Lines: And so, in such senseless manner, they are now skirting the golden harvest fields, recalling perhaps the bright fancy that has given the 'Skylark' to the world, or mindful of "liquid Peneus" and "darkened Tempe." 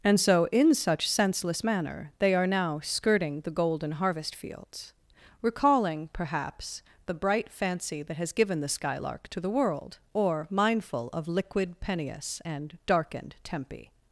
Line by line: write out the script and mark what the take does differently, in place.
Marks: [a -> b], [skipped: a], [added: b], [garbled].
And so, in such senseless manner, they are now skirting the golden harvest fields, recalling perhaps the bright fancy that has given the 'Skylark' to the world, or mindful of "liquid Peneus" and "darkened Tempe."